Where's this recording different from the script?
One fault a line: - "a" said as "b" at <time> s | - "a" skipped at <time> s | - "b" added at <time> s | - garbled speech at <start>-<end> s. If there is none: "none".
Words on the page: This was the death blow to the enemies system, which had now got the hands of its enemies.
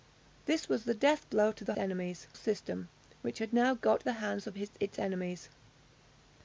none